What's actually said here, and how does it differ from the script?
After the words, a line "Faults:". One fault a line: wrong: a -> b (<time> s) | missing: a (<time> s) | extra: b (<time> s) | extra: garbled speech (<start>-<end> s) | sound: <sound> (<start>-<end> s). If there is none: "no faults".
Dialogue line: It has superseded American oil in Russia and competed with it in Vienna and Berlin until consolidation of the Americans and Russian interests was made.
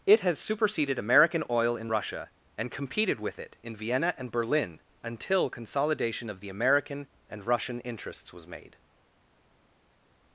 It has superseded American oil in Russia and competed with it in Vienna and Berlin until consolidation of the American and Russian interests was made.
Faults:
wrong: Americans -> American (6.5 s)